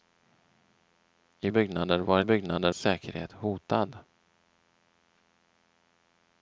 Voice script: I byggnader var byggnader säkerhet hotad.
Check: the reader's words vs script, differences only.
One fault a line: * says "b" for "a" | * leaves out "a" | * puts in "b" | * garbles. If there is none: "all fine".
all fine